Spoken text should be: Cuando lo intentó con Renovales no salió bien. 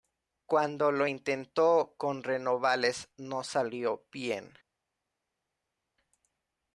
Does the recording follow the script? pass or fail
pass